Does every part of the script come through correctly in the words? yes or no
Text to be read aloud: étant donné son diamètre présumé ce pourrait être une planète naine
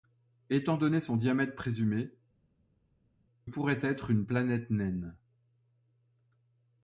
no